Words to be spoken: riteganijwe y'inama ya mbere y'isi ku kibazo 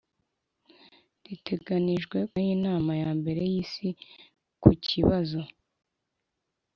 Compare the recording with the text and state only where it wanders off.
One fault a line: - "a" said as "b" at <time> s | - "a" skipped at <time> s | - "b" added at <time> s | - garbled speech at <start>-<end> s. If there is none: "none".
none